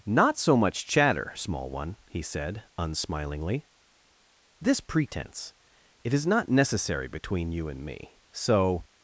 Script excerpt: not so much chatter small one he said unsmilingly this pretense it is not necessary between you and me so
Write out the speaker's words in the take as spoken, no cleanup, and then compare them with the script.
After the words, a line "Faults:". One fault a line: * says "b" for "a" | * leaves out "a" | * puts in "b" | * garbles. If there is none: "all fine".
not so much chatter small one he said unsmilingly this pretense it is not necessary between you and me so
Faults:
all fine